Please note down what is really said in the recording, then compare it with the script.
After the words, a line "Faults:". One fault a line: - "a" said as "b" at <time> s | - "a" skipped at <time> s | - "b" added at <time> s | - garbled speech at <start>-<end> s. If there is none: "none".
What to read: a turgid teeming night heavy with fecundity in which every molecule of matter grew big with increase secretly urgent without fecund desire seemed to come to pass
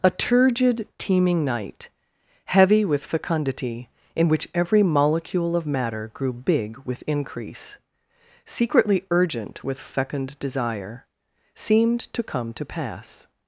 a turgid teeming night heavy with fecundity in which every molecule of matter grew big with increase secretly urgent with fecund desire seemed to come to pass
Faults:
- "without" said as "with" at 9.6 s